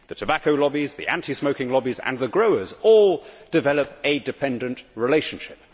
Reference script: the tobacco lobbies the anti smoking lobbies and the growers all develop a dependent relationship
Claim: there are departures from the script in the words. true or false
false